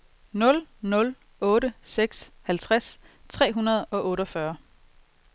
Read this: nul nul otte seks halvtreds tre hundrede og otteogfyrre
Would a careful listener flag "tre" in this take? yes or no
no